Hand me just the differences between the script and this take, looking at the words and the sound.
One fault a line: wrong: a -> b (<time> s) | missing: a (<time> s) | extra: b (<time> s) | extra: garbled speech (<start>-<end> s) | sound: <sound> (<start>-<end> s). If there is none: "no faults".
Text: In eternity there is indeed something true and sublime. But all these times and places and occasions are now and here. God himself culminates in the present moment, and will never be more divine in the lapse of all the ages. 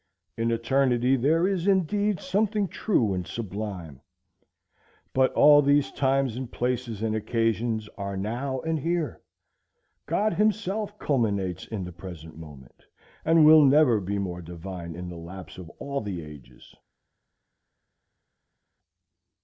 no faults